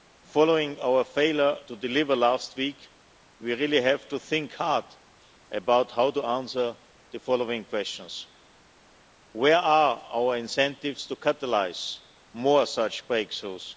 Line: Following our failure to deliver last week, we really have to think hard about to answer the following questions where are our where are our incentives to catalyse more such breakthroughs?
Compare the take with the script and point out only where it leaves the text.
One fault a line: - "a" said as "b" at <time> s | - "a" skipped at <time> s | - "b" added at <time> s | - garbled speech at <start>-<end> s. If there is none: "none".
- "how" added at 5.9 s
- "where are our" skipped at 10.4 s